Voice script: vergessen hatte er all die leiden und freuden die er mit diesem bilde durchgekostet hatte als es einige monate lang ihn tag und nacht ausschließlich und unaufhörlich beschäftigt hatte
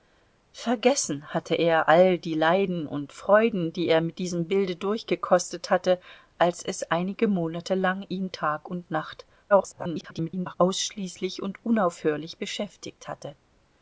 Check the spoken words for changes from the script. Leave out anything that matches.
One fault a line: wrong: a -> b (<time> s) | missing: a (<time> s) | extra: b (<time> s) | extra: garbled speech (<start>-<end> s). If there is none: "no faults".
extra: garbled speech (9.5-10.5 s)